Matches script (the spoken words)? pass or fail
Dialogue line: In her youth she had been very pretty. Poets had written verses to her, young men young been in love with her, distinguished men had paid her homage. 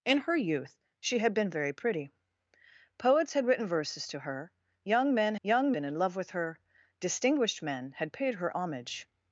pass